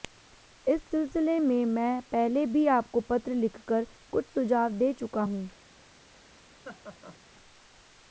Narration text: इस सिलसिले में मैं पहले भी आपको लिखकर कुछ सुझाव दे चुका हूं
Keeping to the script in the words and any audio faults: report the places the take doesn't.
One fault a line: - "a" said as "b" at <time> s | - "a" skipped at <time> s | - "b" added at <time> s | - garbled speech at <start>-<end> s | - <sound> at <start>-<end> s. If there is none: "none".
- "पत्र" added at 3.1 s
- laugh at 6.6-7.2 s